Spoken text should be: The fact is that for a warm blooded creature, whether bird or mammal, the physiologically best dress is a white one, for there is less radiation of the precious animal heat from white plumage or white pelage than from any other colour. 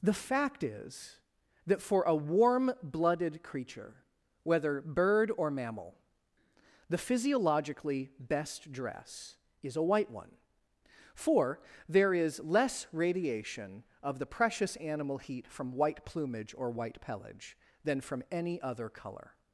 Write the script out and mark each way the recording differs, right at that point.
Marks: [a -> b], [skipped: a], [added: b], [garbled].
The fact is that for a warm blooded creature, whether bird or mammal, the physiologically best dress is a white one, for there is less radiation of the precious animal heat from white plumage or white pelage than from any other colour.